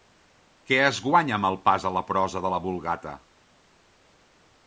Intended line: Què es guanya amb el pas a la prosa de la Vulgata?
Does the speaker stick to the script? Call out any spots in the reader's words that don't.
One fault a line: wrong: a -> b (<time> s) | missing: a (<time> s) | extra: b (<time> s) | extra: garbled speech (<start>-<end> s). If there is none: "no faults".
no faults